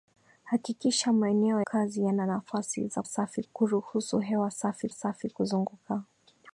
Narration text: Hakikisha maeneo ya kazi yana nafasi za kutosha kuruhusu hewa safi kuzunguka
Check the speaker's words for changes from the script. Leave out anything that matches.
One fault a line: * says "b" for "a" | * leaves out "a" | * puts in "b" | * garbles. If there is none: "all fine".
* leaves out "ya"
* says "safi" for "kutosha"
* puts in "safi"